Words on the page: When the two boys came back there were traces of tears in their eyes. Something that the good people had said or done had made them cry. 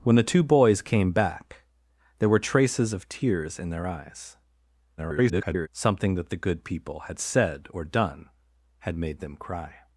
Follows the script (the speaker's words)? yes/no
no